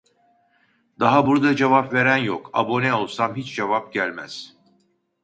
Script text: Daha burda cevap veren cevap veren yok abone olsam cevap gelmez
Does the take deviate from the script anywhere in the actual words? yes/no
yes